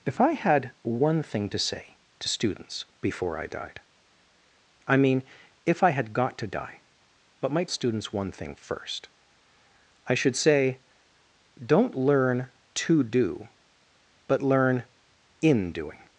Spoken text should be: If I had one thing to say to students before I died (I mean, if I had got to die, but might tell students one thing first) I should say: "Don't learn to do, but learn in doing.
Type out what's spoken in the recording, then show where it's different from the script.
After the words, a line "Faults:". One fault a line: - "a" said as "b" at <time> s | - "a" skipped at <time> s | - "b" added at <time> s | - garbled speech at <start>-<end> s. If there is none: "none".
If I had one thing to say to students before I died (I mean, if I had got to die, but might students one thing first) I should say: "Don't learn to do, but learn in doing.
Faults:
- "tell" skipped at 7.7 s